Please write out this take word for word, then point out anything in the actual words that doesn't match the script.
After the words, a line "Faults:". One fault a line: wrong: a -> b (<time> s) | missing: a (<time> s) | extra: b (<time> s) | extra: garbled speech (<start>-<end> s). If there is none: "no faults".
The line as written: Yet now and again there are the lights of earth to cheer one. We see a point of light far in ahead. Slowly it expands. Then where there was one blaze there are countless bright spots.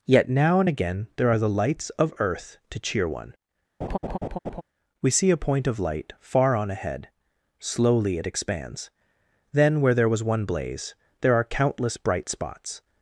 Yet now and again there are the lights of earth to cheer one. We see a point of light far on ahead. Slowly it expands. Then where there was one blaze there are countless bright spots.
Faults:
wrong: in -> on (6.5 s)